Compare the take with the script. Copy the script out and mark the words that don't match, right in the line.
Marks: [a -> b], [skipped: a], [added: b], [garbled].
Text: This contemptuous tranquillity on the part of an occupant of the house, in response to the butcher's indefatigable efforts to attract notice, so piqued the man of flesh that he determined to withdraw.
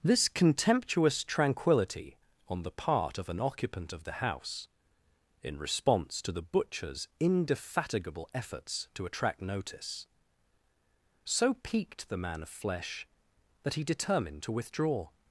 This contemptuous tranquillity on the part of an occupant of the house, in response to the butcher's indefatigable efforts to attract notice, so piqued the man of flesh that he determined to withdraw.